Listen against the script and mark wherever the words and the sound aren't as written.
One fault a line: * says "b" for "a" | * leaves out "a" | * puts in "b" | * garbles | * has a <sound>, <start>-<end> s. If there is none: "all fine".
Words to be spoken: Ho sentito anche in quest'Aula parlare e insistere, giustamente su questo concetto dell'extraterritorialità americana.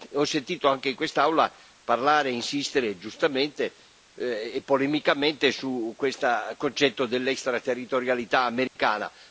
* puts in "e polemicamente"
* has a dropout, 8.7-8.8 s